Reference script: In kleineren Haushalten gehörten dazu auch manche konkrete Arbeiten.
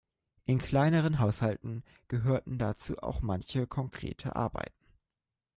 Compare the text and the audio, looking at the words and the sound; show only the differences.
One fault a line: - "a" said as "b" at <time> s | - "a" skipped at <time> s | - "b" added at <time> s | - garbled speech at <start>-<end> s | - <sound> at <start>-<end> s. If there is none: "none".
none